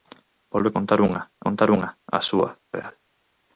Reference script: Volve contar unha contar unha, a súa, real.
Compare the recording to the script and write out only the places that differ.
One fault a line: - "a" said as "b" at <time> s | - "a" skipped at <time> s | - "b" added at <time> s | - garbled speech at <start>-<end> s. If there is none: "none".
none